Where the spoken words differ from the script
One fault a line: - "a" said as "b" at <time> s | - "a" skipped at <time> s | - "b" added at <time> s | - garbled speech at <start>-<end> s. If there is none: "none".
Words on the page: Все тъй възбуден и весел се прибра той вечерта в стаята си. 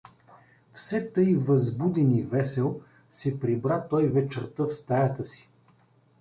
none